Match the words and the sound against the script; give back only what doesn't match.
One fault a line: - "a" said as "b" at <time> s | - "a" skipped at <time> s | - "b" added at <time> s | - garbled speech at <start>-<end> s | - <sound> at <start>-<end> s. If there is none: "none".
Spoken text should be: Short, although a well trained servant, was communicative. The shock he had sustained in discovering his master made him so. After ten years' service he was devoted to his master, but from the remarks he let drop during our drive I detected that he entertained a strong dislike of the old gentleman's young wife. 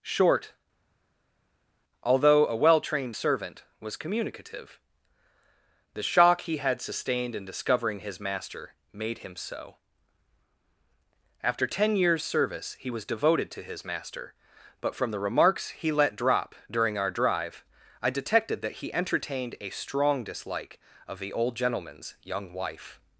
none